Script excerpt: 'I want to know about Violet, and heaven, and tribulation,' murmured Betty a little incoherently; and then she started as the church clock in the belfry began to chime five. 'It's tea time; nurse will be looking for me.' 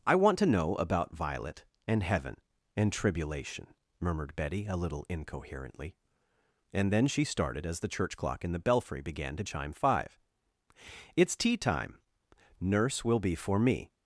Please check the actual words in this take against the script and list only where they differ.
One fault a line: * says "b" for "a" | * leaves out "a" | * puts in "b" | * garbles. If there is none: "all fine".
* leaves out "looking"